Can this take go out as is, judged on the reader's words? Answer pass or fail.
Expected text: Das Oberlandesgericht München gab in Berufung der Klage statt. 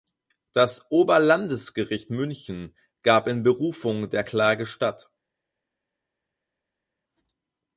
pass